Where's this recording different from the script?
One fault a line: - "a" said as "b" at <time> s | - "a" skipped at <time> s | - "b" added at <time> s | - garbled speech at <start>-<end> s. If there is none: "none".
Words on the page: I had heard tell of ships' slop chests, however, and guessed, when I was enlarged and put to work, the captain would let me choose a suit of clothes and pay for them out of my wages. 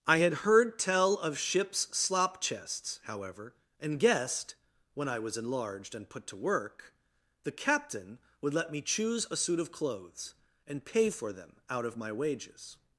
none